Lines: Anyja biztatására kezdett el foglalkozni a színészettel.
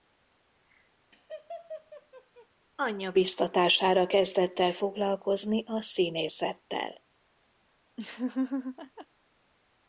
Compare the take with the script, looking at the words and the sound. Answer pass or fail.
fail